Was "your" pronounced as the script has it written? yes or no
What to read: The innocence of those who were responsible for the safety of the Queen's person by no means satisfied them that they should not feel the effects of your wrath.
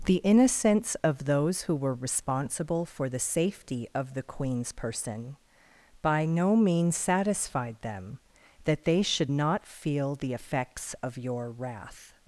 yes